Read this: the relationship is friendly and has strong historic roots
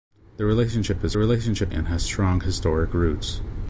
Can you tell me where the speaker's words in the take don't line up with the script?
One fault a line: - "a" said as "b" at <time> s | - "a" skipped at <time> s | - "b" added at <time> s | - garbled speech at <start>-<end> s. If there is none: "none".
- "friendly" said as "relationship" at 1.2 s